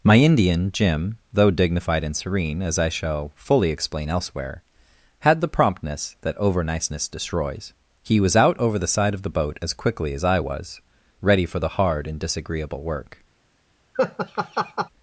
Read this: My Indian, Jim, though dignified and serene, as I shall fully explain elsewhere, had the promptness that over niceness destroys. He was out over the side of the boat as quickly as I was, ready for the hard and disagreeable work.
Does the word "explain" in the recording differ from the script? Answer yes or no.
no